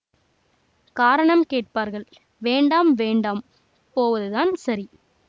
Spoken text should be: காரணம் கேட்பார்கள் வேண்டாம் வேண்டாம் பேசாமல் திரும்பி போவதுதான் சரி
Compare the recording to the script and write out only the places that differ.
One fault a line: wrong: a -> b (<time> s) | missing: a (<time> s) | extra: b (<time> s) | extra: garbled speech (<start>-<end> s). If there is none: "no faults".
missing: பேசாமல் திரும்பி (3.4 s)